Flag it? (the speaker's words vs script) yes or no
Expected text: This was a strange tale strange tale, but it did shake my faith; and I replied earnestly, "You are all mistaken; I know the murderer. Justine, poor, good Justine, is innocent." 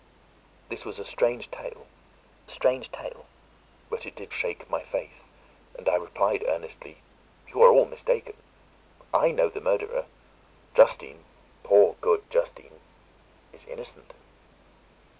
no